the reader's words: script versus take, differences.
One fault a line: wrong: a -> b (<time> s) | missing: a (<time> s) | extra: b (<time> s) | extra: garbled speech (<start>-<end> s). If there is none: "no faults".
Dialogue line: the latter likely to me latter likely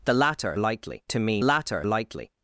no faults